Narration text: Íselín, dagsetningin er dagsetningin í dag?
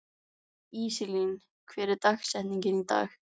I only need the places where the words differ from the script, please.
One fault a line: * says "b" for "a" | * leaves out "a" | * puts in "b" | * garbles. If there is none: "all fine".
* says "hver" for "dagsetningin"